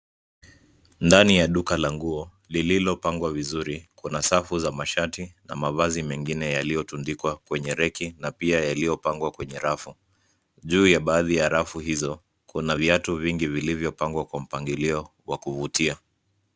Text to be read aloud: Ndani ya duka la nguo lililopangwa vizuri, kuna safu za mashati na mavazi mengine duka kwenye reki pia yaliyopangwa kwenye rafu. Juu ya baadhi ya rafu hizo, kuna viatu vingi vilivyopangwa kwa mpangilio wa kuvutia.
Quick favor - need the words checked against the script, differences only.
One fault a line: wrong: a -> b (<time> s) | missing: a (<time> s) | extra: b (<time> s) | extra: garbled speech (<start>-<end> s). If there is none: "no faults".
wrong: duka -> yaliyotundikwa (6.5 s)
extra: na (8.2 s)